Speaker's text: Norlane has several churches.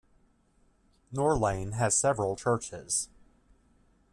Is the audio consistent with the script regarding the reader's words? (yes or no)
yes